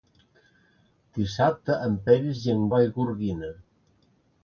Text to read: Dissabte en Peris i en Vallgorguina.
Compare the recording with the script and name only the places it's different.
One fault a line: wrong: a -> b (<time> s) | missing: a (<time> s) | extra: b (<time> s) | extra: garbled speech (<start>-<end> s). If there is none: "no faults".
no faults